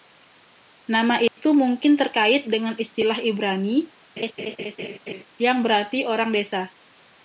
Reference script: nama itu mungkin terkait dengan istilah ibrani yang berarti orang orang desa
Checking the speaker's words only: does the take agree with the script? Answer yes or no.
no